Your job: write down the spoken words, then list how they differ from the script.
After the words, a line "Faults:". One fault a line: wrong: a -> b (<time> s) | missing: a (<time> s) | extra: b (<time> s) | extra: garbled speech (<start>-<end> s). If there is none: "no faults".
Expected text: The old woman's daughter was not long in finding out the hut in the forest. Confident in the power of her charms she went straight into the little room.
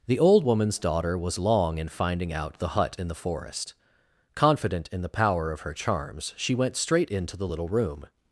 The old woman's daughter was long in finding out the hut in the forest. Confident in the power of her charms she went straight into the little room.
Faults:
missing: not (1.4 s)